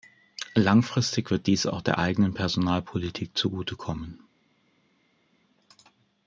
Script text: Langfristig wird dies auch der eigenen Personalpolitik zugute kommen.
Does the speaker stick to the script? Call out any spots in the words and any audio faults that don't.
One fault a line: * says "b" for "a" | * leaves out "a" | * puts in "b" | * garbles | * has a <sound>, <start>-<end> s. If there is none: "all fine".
all fine